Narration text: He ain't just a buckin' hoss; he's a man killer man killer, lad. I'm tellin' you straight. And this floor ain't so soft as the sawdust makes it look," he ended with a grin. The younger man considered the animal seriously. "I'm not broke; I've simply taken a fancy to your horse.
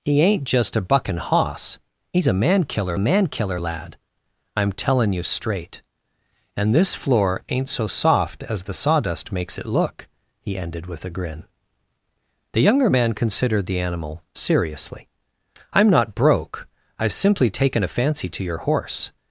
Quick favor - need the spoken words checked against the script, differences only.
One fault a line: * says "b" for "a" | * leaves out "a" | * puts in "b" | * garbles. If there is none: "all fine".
all fine